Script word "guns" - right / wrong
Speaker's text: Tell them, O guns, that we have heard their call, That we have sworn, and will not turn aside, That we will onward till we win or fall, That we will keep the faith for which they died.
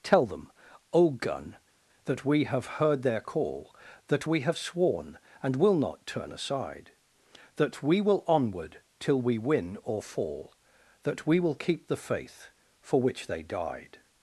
wrong